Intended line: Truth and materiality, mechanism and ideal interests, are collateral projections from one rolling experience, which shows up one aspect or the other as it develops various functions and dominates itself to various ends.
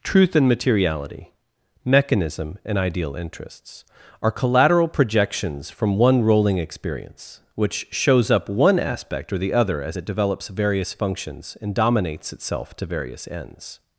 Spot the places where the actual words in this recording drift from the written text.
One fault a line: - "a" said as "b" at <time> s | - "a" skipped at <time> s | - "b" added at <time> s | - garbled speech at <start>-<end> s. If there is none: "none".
none